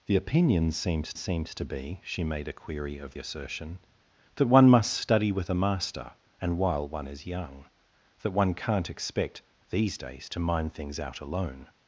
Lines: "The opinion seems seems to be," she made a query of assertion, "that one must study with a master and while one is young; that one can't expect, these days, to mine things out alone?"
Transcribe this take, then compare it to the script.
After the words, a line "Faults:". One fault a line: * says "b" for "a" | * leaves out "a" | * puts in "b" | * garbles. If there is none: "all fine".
"The opinion seems seems to be," she made a query of assertion, "that one must study with a master and while one is young; that one can't expect, these days, to mine things out alone?"
Faults:
all fine